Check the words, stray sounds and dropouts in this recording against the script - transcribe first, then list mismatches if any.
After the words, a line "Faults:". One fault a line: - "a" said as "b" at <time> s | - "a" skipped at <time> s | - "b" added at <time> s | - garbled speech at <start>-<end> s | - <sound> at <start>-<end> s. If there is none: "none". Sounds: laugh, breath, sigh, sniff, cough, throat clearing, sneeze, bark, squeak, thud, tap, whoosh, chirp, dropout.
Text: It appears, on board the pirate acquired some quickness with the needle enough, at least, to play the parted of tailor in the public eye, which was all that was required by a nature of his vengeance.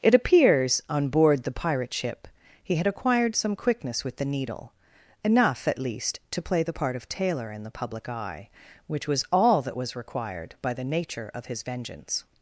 It appears, on board the pirate ship he had acquired some quickness with the needle enough, at least, to play the part of tailor in the public eye, which was all that was required by the nature of his vengeance.
Faults:
- "ship he had" added at 1.9 s
- "parted" said as "part" at 6.7 s
- "a" said as "the" at 10.7 s